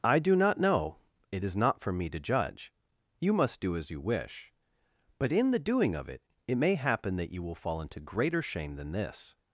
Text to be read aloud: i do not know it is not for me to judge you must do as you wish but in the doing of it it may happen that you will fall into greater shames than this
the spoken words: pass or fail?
fail